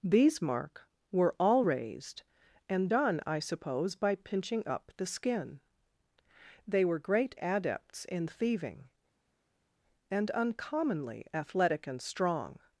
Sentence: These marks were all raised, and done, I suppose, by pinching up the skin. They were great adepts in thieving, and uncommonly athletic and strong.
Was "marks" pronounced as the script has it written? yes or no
no